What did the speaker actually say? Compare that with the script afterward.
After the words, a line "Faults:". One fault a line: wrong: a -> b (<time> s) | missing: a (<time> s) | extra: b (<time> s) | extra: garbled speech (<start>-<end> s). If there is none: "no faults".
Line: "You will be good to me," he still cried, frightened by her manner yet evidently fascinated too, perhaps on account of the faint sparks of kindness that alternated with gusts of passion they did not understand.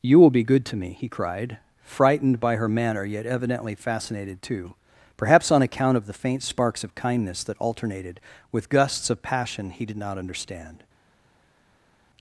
"You will be good to me," he cried, frightened by her manner yet evidently fascinated too, perhaps on account of the faint sparks of kindness that alternated with gusts of passion he did not understand.
Faults:
missing: still (1.1 s)
wrong: they -> he (9.7 s)